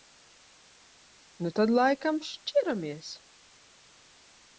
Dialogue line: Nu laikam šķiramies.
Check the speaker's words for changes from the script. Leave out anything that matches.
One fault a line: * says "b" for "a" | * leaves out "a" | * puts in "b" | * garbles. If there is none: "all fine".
* puts in "tad"